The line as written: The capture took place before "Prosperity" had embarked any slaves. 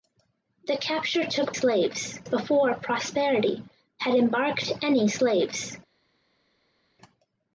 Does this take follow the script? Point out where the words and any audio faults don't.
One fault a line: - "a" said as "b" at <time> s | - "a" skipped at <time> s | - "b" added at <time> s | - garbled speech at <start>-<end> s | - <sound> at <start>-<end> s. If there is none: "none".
- "place" said as "slaves" at 1.5 s